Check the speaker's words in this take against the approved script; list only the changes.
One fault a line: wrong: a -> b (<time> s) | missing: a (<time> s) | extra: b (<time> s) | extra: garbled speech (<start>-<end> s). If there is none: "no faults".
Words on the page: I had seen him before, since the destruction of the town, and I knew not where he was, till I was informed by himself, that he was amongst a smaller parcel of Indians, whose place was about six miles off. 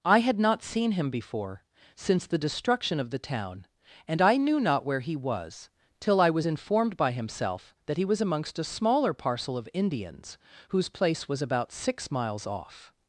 extra: not (0.4 s)